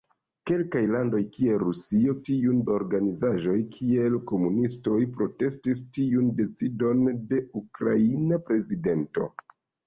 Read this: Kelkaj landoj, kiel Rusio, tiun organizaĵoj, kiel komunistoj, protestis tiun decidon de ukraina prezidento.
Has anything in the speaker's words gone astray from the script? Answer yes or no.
no